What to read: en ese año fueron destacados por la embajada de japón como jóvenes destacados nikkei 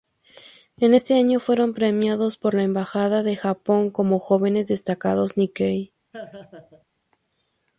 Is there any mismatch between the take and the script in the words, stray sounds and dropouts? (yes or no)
yes